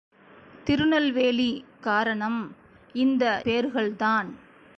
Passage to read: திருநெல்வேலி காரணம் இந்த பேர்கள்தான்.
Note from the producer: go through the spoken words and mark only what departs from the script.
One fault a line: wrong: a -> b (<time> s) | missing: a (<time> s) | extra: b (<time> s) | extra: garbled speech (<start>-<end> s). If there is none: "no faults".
no faults